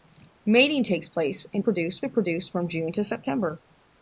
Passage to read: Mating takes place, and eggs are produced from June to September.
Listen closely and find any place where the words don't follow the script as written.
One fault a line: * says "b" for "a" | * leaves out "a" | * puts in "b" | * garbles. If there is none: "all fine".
* says "produced" for "eggs"